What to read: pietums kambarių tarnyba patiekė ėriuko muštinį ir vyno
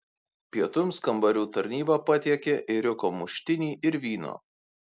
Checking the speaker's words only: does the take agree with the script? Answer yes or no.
yes